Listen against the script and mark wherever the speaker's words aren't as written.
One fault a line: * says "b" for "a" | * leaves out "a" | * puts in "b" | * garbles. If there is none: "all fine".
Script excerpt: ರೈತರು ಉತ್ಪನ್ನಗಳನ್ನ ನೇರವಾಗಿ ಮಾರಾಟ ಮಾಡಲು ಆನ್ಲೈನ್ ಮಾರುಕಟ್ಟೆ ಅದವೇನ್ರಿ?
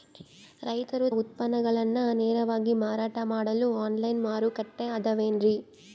all fine